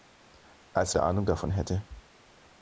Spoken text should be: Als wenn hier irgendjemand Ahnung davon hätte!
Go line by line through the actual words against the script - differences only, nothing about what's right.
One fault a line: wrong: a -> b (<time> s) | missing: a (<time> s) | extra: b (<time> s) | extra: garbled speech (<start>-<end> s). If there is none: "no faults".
missing: wenn hier irgendjemand (1.0 s)